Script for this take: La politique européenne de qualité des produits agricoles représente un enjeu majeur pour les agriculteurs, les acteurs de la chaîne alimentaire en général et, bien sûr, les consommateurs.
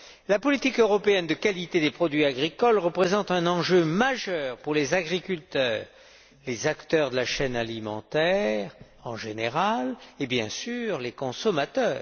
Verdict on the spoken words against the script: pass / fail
pass